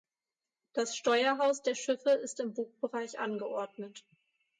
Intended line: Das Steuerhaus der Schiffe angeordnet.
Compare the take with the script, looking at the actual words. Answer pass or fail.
fail